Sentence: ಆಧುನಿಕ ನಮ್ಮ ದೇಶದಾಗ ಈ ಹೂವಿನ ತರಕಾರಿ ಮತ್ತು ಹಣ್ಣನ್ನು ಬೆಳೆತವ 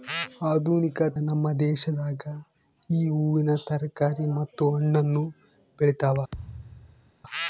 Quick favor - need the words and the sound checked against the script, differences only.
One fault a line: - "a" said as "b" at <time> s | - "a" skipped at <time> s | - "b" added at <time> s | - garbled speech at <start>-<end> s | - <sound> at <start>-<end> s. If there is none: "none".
- thud at 6.3-7.1 s